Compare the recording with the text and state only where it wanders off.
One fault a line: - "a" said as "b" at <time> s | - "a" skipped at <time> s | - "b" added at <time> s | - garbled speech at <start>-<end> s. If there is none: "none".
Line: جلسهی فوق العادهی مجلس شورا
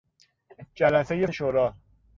- "فوق العادهی مجلس" skipped at 1.3 s